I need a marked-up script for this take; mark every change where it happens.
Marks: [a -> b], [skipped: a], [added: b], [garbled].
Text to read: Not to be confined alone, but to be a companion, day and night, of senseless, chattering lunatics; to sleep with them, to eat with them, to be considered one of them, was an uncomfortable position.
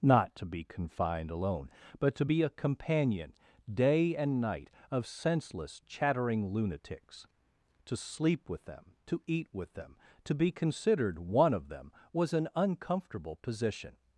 Not to be confined alone, but to be a companion, day and night, of senseless, chattering lunatics; to sleep with them, to eat with them, to be considered one of them, was an uncomfortable position.